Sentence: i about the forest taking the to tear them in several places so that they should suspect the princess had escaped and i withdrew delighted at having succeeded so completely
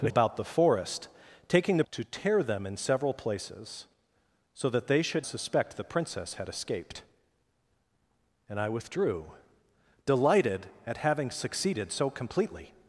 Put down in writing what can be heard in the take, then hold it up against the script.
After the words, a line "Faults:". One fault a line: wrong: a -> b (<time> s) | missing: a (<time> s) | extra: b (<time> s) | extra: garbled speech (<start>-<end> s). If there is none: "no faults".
i about the forest taking the to tear them in several places so that they should suspect the princess had escaped and i withdrew delighted at having succeeded so completely
Faults:
no faults